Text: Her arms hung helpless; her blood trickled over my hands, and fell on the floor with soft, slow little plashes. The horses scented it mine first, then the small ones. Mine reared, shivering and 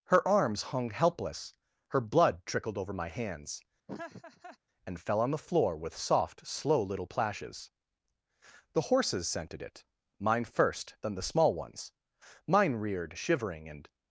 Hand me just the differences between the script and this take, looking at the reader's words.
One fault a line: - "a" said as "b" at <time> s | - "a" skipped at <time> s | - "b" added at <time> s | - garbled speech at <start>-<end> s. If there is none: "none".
none